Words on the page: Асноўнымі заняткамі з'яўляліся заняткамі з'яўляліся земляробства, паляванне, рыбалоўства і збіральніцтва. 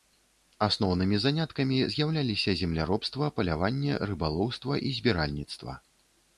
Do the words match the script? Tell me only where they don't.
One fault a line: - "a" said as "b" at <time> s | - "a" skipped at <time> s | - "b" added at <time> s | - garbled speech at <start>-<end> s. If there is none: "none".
- "заняткамі з'яўляліся" skipped at 2.5 s